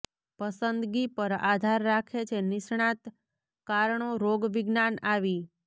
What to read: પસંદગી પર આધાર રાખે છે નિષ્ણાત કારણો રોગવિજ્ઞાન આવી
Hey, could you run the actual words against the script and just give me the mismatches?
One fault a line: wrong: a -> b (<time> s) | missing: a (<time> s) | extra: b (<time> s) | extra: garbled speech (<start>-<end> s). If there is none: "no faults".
no faults